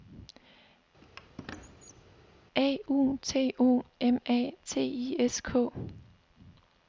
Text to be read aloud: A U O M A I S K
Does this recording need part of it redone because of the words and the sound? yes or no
yes